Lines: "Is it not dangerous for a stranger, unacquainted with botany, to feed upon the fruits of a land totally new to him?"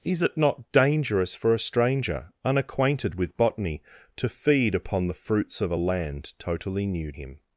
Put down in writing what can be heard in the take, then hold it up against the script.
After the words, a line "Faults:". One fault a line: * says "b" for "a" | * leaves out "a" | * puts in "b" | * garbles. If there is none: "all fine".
"Is it not dangerous for a stranger, unacquainted with botany, to feed upon the fruits of a land totally new him?"
Faults:
* leaves out "to"